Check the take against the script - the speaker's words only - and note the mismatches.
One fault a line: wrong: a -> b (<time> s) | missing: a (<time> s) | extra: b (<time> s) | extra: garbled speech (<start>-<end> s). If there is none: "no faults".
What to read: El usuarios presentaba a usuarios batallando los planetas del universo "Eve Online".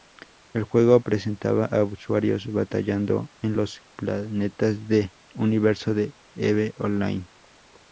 wrong: usuarios -> juego (0.6 s)
extra: en (3.4 s)
extra: de (5.9 s)